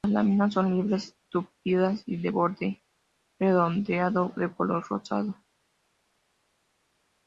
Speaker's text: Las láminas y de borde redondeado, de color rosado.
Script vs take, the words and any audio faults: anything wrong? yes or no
yes